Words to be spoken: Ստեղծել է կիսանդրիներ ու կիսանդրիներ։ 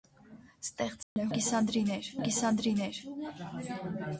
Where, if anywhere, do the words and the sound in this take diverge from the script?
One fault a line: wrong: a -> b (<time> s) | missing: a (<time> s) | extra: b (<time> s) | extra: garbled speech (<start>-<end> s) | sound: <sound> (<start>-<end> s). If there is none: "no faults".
sound: dropout (1.0-1.2 s)